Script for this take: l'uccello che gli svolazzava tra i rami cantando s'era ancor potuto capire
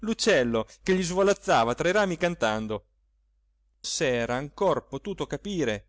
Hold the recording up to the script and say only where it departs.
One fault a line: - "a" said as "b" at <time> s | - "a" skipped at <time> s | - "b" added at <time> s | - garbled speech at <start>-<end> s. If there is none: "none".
none